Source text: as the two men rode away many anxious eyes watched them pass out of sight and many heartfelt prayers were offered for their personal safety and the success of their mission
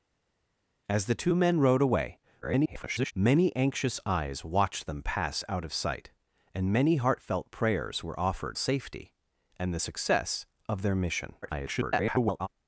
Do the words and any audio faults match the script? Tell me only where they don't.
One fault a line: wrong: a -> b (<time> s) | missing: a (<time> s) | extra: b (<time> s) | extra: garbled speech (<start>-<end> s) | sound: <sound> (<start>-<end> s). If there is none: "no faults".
extra: garbled speech (2.4-3.1 s)
missing: for their personal (8.6 s)
extra: garbled speech (11.4-12.5 s)